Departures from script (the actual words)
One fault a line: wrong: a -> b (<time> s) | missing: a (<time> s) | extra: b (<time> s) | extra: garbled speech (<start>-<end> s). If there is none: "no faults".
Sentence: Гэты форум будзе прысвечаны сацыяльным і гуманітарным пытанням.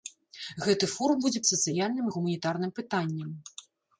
missing: прысвечаны (1.4 s)